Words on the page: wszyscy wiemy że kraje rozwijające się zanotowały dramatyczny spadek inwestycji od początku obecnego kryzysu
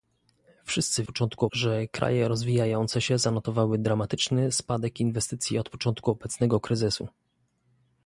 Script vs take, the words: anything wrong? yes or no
yes